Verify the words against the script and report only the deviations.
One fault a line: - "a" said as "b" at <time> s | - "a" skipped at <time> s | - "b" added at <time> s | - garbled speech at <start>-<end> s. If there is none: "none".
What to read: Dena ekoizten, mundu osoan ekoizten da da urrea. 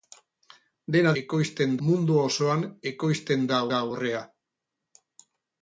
none